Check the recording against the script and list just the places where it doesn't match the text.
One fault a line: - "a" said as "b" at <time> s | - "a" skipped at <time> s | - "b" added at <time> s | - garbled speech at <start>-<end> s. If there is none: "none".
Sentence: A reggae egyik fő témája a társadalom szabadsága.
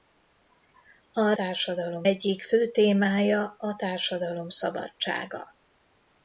- "reggae" said as "társadalom" at 1.3 s